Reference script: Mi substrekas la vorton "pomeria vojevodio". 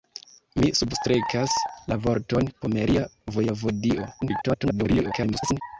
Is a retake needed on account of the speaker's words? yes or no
yes